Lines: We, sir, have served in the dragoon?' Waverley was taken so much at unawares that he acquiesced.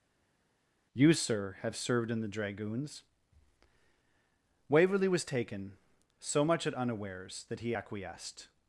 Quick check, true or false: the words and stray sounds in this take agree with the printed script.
false